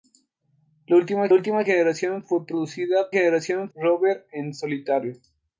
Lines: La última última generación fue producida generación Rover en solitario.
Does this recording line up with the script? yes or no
yes